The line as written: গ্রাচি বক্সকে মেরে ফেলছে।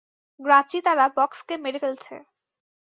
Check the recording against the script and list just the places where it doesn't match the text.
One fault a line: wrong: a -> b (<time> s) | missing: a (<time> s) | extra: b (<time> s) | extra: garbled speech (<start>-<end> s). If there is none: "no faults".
extra: তারা (0.8 s)